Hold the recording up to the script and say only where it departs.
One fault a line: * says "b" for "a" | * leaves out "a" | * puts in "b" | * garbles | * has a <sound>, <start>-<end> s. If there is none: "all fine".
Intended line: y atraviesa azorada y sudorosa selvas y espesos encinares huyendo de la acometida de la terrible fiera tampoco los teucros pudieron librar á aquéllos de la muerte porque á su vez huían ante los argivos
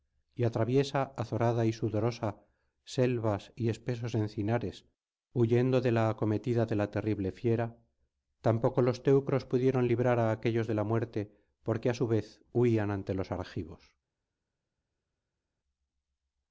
all fine